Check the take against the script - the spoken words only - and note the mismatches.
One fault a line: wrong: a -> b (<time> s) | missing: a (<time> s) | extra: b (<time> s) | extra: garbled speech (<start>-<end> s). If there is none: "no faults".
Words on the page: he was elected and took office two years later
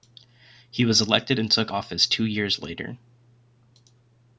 no faults